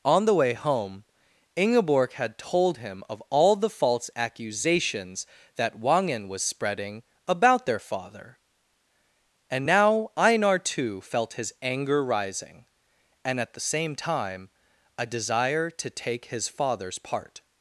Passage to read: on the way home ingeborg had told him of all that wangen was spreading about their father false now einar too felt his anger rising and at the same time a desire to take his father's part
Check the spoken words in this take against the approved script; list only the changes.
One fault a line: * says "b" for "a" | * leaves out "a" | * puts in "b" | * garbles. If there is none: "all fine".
* puts in "the false accusations"
* says "and" for "false"